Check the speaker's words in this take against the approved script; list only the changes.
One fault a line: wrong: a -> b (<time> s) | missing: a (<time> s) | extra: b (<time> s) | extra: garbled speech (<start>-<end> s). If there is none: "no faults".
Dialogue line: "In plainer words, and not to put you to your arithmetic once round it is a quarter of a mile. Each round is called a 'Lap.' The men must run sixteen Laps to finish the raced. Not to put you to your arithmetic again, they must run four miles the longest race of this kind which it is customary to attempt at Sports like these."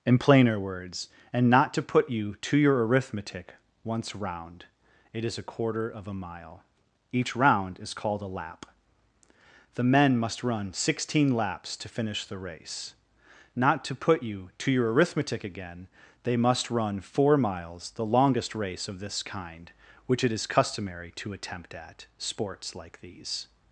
wrong: raced -> race (12.4 s)